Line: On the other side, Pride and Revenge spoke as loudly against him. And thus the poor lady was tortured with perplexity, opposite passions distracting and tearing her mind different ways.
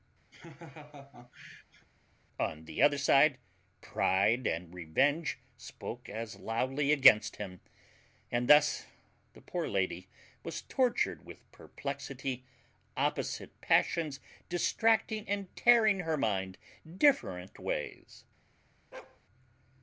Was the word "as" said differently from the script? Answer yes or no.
no